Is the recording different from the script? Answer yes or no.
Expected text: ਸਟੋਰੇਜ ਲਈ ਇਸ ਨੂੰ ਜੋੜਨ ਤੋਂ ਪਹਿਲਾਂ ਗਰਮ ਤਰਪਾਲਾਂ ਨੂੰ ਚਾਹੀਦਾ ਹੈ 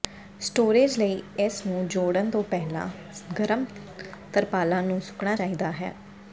yes